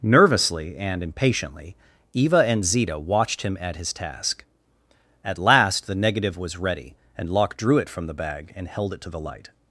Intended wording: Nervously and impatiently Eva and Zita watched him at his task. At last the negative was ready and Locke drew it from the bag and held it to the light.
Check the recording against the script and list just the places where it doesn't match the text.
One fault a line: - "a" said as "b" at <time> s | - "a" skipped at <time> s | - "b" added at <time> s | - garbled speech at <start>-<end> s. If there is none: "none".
none